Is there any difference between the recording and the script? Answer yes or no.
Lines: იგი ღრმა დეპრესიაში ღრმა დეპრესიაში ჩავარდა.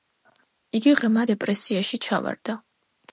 yes